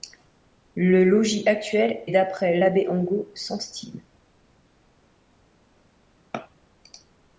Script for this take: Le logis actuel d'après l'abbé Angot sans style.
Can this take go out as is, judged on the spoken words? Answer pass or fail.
pass